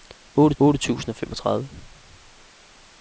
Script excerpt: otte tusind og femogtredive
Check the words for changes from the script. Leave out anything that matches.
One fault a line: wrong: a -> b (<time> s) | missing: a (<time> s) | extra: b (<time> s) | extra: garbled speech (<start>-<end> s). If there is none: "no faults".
extra: otte (0.6 s)